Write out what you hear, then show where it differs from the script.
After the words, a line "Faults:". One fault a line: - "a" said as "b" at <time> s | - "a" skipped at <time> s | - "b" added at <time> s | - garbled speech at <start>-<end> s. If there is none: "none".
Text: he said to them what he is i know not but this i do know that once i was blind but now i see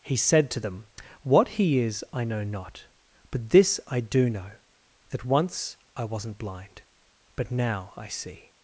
he said to them what he is i know not but this i do know that once i wasn't blind but now i see
Faults:
- "was" said as "wasn't" at 6.1 s